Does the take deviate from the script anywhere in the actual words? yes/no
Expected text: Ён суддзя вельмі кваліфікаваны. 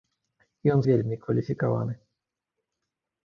yes